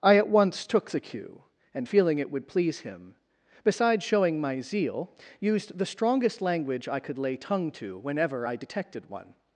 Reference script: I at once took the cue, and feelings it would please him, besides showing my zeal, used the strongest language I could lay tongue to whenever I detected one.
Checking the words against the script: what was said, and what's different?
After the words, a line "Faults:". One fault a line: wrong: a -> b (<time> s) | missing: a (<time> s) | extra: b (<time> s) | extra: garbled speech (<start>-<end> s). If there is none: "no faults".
I at once took the cue, and feeling it would please him, besides showing my zeal, used the strongest language I could lay tongue to whenever I detected one.
Faults:
wrong: feelings -> feeling (1.8 s)